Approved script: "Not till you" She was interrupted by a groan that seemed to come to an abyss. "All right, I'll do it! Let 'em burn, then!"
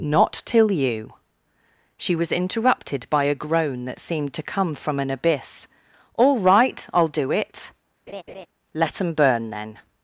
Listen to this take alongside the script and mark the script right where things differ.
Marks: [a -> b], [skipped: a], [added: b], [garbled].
"Not till you" She was interrupted by a groan that seemed to come [to -> from] an abyss. "All right, I'll do it! Let 'em burn, then!"